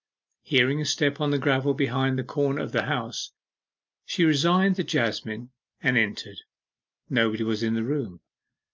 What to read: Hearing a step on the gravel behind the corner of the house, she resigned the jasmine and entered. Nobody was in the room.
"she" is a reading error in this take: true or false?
false